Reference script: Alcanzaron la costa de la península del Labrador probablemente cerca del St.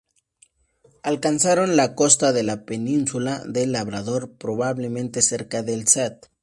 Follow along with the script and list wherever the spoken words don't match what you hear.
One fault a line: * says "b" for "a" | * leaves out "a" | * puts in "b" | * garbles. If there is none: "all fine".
all fine